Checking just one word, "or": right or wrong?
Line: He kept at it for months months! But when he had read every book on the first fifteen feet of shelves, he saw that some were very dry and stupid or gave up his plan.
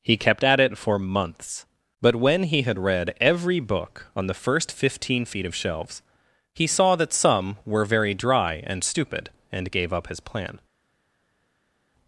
wrong